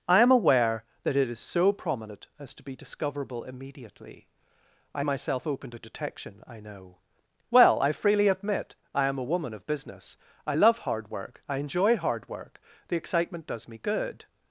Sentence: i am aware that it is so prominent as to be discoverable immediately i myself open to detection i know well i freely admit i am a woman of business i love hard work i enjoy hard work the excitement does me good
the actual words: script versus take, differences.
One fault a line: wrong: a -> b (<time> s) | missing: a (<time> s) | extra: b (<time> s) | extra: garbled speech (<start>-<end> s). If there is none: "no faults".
no faults